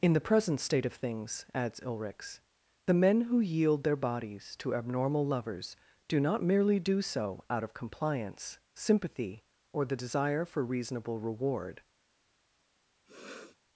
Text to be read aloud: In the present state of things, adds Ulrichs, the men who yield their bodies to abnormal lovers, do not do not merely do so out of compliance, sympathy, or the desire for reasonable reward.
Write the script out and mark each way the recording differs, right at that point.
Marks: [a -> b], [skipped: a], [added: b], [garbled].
In the present state of things, adds Ulrichs, the men who yield their bodies to abnormal lovers, do not [skipped: do not] merely do so out of compliance, sympathy, or the desire for reasonable reward.